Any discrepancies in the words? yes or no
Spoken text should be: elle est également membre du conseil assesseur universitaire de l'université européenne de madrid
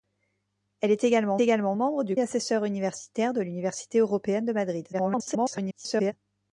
yes